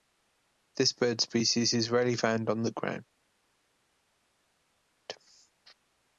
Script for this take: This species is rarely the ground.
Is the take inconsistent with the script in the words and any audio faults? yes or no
yes